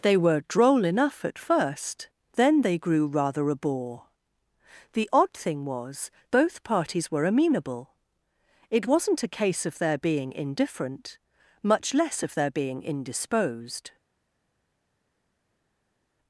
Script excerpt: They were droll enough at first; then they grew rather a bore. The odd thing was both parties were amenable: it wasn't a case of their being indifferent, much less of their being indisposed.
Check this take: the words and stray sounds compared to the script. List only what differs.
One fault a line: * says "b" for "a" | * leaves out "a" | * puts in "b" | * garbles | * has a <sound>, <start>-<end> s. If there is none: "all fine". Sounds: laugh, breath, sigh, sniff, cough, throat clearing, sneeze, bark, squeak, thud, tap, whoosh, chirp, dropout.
all fine